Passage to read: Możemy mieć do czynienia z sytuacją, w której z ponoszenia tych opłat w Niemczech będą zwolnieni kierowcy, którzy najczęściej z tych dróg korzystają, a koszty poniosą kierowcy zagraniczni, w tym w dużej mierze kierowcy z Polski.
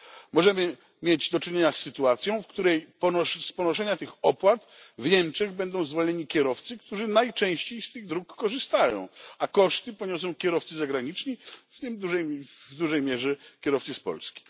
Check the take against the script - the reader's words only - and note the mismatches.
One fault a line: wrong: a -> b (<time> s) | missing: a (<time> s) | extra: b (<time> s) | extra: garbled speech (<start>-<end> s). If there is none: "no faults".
no faults